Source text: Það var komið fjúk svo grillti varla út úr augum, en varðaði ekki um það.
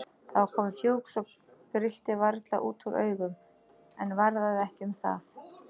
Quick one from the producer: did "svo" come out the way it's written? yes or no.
yes